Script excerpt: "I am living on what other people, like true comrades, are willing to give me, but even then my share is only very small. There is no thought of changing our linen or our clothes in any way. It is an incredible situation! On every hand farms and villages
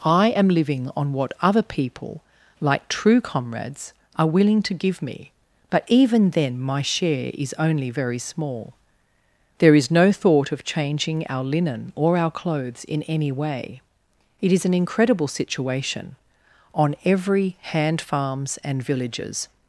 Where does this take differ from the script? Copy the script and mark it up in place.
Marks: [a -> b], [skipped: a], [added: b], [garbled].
"I am living on what other people, like true comrades, are willing to give me, but even then my share is only very small. There is no thought of changing our linen or our clothes in any way. It is an incredible situation! On every hand farms and villages